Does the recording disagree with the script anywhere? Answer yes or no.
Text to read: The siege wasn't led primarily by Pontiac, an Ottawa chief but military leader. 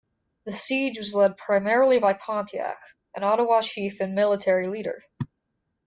yes